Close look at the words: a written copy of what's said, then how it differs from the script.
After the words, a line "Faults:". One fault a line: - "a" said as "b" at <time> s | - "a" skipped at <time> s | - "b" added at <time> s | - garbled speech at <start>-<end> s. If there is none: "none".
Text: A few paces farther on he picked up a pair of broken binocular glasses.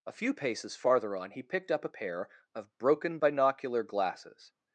A few paces farther on he picked up a pair of broken binocular glasses.
Faults:
none